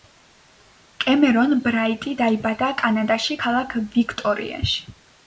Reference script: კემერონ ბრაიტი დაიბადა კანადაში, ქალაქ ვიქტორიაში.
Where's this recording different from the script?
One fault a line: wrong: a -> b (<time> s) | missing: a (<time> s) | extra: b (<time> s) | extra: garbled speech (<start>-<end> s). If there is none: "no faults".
no faults